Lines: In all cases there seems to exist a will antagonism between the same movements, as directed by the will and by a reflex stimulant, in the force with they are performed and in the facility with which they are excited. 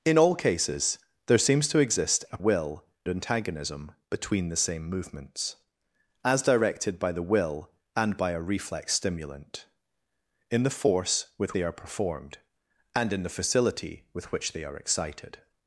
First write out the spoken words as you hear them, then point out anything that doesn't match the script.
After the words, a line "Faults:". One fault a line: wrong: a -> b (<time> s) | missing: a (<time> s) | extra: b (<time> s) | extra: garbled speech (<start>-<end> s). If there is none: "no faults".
In all cases there seems to exist a will antagonism between the same movements, as directed by the will and by a reflex stimulant, in the force with they are performed and in the facility with which they are excited.
Faults:
no faults